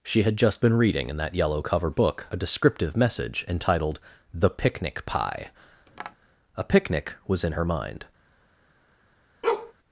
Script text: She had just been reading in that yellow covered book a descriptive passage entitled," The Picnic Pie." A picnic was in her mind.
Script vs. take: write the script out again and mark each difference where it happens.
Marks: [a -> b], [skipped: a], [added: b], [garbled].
She had just been reading in that yellow [covered -> cover] book a descriptive [passage -> message] entitled," The Picnic Pie." A picnic was in her mind.